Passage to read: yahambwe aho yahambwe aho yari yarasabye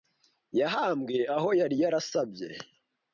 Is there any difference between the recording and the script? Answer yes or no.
yes